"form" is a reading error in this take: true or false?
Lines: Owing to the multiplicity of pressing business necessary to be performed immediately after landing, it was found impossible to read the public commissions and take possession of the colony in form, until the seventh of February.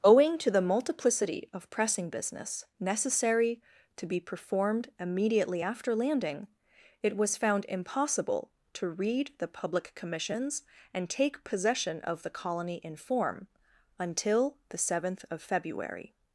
false